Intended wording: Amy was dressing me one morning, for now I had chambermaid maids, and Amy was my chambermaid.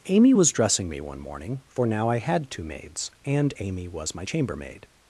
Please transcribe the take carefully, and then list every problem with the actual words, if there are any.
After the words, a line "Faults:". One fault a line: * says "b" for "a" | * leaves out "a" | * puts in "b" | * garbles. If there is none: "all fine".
Amy was dressing me one morning, for now I had two maids, and Amy was my chambermaid.
Faults:
* says "two" for "chambermaid"